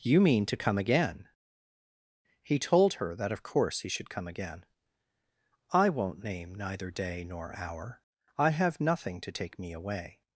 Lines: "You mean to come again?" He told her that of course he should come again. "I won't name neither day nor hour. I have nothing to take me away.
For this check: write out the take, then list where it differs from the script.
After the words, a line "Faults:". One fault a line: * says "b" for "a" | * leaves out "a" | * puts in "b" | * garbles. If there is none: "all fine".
"You mean to come again?" He told her that of course he should come again. "I won't name neither day nor hour. I have nothing to take me away.
Faults:
all fine